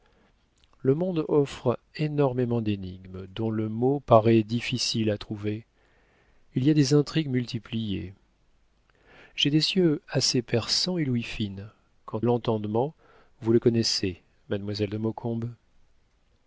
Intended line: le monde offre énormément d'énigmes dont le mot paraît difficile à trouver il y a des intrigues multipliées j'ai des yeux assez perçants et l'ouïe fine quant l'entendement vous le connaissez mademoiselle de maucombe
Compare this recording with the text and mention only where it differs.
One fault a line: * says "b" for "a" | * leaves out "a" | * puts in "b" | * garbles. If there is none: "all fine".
all fine